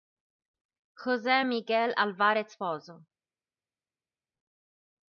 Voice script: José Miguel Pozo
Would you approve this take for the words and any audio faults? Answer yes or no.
no